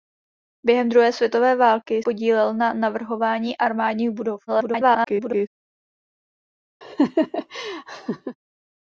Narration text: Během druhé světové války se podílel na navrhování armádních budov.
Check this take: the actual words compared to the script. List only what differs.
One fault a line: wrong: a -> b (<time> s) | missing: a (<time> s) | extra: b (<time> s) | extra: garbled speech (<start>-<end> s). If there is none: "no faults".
missing: se (2.0 s)
extra: garbled speech (4.5-5.5 s)